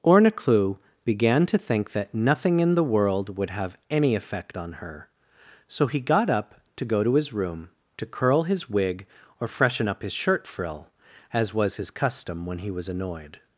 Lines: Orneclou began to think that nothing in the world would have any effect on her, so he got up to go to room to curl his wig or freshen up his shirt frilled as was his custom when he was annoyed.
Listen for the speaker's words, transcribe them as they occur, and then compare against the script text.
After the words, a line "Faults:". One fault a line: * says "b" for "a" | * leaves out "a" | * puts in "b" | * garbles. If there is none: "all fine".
Orneclou began to think that nothing in the world would have any effect on her, so he got up to go to his room to curl his wig or freshen up his shirt frill as was his custom when he was annoyed.
Faults:
* puts in "his"
* says "frill" for "frilled"